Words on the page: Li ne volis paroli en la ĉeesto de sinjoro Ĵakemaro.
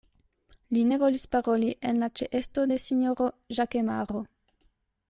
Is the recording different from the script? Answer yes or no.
no